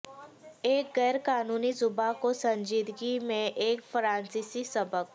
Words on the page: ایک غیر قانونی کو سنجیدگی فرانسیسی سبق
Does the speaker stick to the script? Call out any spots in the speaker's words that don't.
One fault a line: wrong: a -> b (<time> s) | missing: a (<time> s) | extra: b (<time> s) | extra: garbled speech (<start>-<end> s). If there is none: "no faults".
extra: زبان (1.7 s)
extra: میں ایک (3.2 s)